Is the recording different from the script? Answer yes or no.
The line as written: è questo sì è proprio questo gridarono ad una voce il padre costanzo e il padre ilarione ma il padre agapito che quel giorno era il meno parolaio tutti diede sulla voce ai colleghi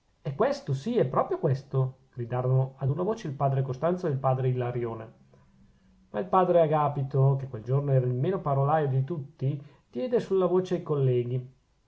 yes